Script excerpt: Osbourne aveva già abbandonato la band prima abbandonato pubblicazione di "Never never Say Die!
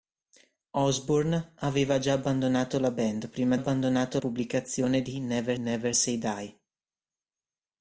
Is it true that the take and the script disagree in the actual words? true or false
false